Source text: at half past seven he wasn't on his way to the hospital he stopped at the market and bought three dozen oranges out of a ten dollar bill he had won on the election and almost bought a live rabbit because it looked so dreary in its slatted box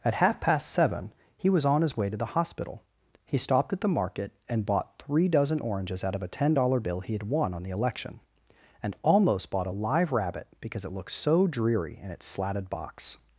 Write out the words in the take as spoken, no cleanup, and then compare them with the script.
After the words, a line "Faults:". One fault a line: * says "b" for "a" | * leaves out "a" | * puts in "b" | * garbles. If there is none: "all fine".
at half past seven he was on his way to the hospital he stopped at the market and bought three dozen oranges out of a ten dollar bill he had won on the election and almost bought a live rabbit because it looked so dreary in its slatted box
Faults:
* says "was" for "wasn't"